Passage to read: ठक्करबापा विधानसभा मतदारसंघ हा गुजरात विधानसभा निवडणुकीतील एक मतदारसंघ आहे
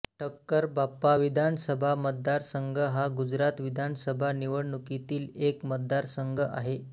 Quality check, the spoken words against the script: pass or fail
pass